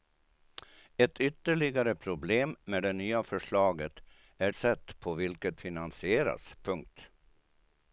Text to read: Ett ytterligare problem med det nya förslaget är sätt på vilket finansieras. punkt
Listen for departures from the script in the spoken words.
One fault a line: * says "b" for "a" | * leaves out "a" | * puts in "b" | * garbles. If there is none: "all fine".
all fine